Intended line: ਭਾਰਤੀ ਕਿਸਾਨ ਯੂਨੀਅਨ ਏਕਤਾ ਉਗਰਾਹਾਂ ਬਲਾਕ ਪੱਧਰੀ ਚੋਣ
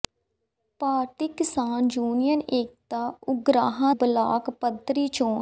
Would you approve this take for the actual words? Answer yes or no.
yes